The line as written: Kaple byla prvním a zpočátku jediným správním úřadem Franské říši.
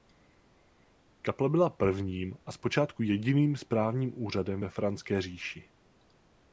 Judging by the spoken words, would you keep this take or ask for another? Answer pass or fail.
fail